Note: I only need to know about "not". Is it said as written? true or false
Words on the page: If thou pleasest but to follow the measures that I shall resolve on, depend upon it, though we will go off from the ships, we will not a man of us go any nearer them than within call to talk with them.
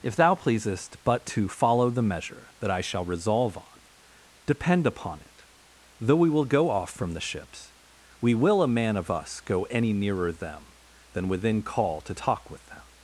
false